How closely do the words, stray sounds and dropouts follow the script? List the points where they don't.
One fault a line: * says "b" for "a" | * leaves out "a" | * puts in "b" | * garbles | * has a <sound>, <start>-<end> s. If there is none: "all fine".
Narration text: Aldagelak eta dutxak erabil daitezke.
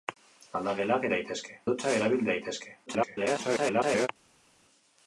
* says "daitezke" for "eta"
* garbles